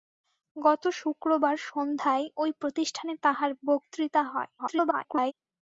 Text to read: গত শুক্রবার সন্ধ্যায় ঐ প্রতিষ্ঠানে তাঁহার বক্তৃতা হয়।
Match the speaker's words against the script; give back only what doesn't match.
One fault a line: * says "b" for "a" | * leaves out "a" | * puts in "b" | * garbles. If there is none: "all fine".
* garbles